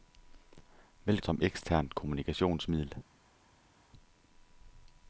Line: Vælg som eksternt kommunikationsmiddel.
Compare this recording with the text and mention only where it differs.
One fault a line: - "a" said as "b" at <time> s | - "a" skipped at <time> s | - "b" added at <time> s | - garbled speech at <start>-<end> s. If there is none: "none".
none